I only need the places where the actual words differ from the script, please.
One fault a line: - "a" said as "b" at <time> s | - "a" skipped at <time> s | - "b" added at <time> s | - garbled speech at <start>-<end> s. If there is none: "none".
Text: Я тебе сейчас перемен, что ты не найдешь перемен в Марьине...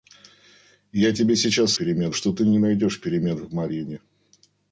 none